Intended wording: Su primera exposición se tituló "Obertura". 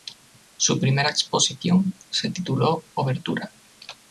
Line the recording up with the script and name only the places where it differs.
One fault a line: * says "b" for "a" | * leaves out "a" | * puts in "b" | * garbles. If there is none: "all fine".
all fine